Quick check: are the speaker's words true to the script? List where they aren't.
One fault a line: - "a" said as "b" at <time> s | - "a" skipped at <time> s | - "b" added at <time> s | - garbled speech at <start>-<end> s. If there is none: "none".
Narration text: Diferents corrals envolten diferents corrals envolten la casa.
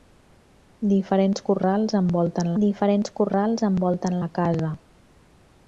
none